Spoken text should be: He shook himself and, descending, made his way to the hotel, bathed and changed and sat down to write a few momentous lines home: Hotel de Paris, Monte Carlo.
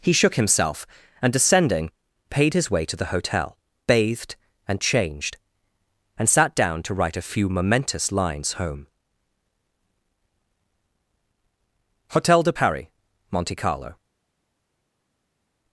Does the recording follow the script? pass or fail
fail